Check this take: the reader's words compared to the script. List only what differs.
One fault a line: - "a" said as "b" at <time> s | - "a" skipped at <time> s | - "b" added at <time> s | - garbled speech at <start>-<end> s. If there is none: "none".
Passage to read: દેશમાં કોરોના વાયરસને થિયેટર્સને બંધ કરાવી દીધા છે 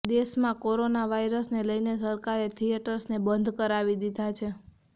- "લઈને સરકારે" added at 1.6 s